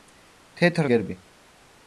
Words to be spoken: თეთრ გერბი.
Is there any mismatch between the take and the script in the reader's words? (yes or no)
no